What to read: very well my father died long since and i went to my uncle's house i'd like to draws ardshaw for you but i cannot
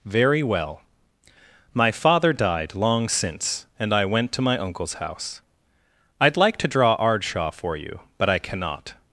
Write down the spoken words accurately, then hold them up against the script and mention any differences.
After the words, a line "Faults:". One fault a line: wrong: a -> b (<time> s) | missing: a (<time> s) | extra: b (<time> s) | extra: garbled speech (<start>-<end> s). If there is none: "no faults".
very well my father died long since and i went to my uncle's house i'd like to draw ardshaw for you but i cannot
Faults:
wrong: draws -> draw (6.7 s)